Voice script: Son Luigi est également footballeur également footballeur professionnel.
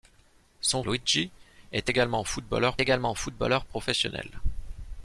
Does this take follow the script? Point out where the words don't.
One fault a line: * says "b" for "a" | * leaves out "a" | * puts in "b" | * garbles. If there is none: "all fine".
all fine